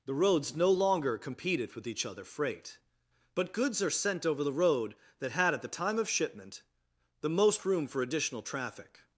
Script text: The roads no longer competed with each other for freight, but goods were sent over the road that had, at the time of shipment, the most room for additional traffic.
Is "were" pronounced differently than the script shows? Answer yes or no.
yes